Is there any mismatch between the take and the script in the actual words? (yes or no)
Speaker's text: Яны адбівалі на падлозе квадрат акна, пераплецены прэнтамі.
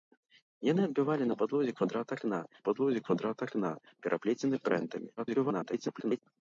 yes